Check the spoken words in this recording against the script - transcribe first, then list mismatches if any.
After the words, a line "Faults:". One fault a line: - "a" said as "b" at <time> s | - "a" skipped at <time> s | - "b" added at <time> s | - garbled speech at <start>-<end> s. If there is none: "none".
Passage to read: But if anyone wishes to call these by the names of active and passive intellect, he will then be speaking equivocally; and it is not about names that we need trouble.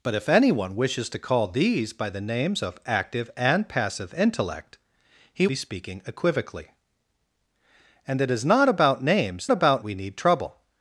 But if anyone wishes to call these by the names of active and passive intellect, he be speaking equivocally; and it is not about names about we need trouble.
Faults:
- "will then" skipped at 5.5 s
- "that" said as "about" at 9.5 s